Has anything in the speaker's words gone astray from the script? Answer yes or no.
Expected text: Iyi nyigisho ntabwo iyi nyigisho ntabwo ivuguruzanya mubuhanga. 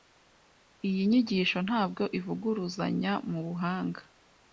yes